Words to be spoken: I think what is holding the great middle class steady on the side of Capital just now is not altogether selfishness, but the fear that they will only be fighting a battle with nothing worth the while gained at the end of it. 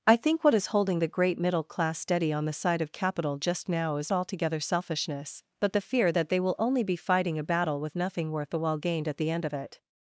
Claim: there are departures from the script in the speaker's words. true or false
true